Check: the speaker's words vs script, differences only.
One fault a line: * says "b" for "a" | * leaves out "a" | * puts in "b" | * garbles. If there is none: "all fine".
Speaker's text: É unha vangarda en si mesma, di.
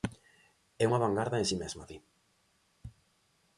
all fine